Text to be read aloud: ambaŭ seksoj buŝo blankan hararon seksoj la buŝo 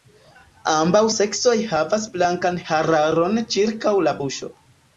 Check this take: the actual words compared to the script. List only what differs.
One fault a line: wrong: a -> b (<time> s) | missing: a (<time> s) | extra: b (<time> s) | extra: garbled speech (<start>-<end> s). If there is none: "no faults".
wrong: buŝo -> havas (1.7 s)
wrong: seksoj -> ĉirkaŭ (3.6 s)